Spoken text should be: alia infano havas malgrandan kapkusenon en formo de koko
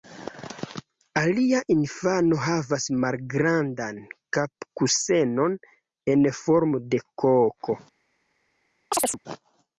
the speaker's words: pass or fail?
pass